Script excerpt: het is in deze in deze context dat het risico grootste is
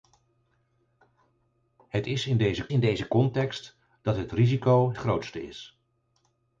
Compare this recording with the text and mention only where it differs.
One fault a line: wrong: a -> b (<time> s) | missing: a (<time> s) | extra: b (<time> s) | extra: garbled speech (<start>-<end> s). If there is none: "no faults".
no faults